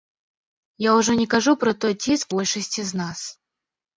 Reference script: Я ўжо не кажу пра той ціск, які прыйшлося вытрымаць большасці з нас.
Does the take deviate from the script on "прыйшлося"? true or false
true